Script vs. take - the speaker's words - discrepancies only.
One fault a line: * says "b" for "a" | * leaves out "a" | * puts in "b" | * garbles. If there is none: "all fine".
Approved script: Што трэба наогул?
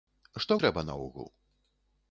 all fine